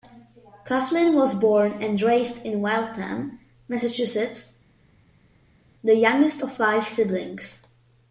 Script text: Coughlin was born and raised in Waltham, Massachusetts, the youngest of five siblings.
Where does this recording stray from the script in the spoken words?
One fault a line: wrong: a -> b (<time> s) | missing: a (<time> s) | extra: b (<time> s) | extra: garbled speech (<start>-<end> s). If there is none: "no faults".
no faults